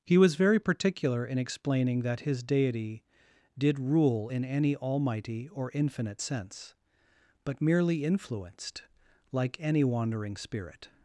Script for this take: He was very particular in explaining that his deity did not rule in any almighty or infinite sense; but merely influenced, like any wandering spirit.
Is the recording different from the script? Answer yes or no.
yes